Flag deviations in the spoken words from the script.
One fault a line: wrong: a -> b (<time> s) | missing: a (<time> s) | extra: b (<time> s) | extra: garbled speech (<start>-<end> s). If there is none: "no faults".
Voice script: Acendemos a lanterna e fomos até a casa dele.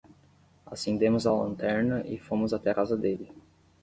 no faults